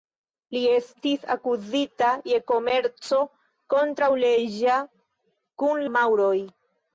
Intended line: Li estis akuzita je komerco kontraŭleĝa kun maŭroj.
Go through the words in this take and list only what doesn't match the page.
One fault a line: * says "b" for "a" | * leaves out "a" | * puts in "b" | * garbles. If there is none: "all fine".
all fine